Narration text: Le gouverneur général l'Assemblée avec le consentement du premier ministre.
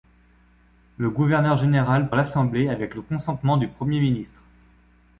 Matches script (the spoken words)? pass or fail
pass